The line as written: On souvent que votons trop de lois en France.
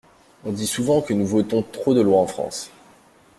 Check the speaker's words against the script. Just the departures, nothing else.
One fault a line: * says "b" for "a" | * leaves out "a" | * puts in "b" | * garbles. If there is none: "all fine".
* puts in "dit"
* puts in "nous"